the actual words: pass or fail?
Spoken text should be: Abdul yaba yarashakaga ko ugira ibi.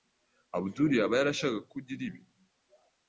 pass